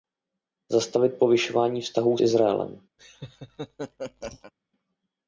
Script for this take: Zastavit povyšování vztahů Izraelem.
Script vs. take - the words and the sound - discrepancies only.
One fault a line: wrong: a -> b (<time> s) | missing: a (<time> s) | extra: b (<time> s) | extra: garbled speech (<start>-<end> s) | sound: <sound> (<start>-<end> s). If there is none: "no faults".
sound: laugh (3.0-4.5 s)